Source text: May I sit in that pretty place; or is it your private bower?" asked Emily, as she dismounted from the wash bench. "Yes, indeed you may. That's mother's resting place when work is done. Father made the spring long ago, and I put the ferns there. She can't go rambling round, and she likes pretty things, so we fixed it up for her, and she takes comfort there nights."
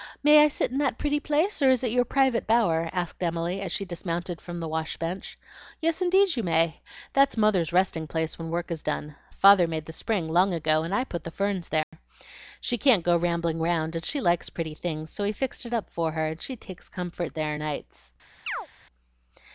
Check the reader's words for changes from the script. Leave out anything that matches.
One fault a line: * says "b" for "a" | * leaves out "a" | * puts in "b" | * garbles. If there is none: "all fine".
all fine